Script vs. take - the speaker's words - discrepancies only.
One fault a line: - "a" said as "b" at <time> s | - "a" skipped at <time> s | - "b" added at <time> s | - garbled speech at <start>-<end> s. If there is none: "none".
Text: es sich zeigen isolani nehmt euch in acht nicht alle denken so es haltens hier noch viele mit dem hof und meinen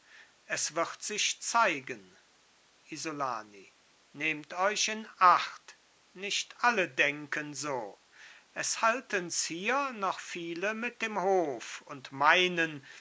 - "wird" added at 0.7 s